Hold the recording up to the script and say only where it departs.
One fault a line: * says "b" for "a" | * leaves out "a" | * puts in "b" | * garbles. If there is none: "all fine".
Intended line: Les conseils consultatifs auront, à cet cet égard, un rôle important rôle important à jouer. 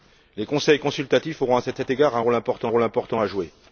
all fine